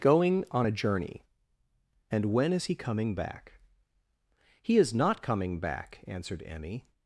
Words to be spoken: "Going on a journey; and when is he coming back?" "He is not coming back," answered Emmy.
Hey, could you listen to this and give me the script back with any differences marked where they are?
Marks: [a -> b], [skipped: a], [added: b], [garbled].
"Going on a journey; and when is he coming back?" "He is not coming back," answered Emmy.